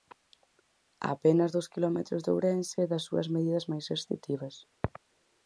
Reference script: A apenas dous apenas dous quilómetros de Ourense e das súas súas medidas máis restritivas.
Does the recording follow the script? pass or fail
fail